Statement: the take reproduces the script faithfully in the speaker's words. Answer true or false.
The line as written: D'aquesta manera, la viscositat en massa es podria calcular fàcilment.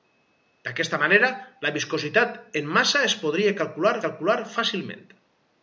false